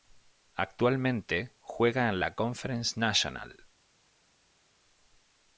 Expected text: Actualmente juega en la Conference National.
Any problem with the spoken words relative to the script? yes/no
no